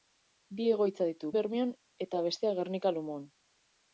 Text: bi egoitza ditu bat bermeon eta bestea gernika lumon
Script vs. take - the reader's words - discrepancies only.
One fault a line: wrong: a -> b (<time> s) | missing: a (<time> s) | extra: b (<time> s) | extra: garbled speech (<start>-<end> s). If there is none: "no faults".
missing: bat (1.3 s)